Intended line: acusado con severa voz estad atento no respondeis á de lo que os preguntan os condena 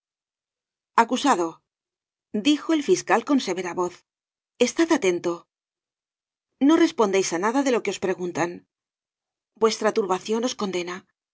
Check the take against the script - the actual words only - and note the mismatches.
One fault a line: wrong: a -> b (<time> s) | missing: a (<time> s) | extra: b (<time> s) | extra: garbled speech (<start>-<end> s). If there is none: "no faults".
extra: dijo el fiscal (2.3 s)
extra: nada (7.5 s)
extra: vuestra turbacion (9.6 s)